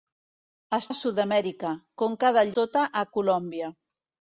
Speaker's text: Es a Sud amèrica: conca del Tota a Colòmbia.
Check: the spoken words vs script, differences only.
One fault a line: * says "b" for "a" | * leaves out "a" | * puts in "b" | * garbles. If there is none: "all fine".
all fine